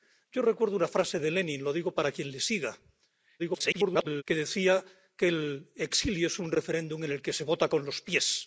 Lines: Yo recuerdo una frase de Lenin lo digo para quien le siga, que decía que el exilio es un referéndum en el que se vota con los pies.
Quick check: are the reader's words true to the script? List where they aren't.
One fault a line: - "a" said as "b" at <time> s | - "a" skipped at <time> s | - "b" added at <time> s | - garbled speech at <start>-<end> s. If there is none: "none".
- garbled speech at 3.4-4.2 s